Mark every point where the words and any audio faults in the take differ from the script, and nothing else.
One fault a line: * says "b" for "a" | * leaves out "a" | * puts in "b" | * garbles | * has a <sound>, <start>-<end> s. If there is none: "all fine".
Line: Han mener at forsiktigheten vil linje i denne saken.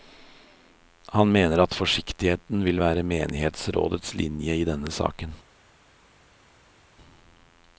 * puts in "være menighetsrådets"